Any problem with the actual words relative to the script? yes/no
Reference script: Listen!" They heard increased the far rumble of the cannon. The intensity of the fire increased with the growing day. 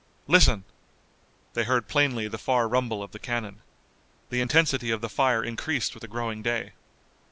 yes